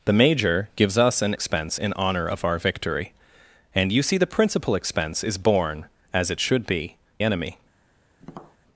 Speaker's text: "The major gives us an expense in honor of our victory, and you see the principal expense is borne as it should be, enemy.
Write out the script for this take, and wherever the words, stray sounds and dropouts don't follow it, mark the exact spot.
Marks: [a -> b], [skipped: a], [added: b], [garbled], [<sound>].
"The major gives us an expense in honor of our victory, and you see the principal expense is borne as it should be, enemy. [tap]